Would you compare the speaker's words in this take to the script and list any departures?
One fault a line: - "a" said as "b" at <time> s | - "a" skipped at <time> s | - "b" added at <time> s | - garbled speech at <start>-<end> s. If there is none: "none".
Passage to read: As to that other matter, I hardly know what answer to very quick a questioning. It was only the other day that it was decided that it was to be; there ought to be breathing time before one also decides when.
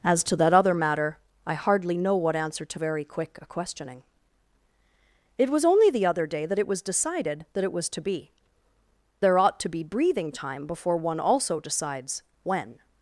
none